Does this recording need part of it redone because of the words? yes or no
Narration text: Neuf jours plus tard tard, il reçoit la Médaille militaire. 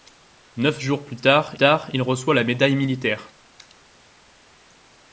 no